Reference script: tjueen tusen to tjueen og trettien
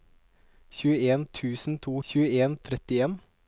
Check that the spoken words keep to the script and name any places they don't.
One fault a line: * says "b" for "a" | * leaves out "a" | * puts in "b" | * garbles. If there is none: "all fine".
all fine